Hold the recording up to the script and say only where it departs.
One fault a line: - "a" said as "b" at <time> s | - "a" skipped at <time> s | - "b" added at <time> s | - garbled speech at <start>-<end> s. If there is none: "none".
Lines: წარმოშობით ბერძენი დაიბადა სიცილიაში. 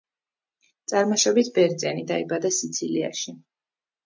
none